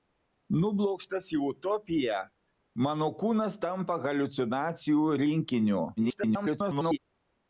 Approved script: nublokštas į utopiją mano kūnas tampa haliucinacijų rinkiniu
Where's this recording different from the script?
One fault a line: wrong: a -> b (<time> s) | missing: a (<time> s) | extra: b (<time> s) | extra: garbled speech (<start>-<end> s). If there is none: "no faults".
extra: garbled speech (6.0-7.0 s)